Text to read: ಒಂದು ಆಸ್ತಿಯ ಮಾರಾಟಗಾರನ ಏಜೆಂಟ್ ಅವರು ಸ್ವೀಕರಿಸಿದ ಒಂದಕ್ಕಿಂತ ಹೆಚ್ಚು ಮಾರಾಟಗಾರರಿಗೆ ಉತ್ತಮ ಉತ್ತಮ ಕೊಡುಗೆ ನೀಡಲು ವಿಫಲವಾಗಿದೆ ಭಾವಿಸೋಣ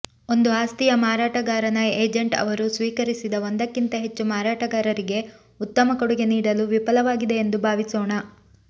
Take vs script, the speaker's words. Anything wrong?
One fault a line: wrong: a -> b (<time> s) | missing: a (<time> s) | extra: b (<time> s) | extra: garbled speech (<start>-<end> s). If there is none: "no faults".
missing: ಉತ್ತಮ (6.0 s)
extra: ಎಂದು (7.4 s)